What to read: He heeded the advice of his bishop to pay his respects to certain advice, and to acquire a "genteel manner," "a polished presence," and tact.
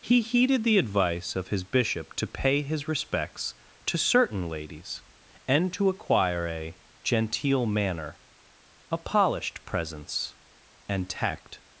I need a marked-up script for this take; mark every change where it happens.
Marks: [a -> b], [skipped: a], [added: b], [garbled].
He heeded the advice of his bishop to pay his respects to certain [advice, -> ladies] and to acquire a "genteel manner," "a polished presence," and tact.